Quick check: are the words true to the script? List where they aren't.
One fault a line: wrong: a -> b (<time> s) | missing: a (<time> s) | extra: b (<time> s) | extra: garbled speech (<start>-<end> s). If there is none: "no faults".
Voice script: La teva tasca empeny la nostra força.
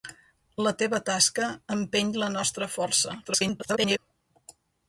extra: garbled speech (3.2-4.0 s)